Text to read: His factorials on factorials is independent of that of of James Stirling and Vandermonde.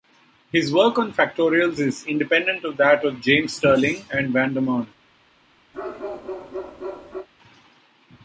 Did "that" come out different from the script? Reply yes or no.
no